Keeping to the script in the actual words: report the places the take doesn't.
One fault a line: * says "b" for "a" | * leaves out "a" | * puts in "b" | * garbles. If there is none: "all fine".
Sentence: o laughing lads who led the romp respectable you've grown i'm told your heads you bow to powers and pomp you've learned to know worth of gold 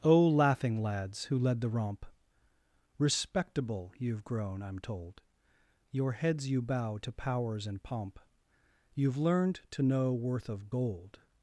all fine